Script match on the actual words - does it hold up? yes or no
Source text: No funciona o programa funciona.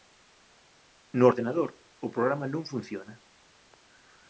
no